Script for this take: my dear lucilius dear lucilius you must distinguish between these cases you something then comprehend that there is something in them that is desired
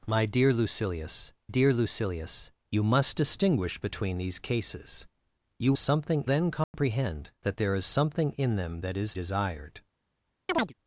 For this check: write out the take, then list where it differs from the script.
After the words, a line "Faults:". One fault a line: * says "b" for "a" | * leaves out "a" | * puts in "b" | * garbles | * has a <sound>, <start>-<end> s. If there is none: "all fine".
my dear lucilius dear lucilius you must distinguish between these cases you something then comprehend that there is something in them that is desired
Faults:
* has a dropout, 6.6-6.7 s
* has a chirp, 10.5-10.7 s